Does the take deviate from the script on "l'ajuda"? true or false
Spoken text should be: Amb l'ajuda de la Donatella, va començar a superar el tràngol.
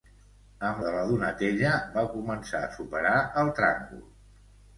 true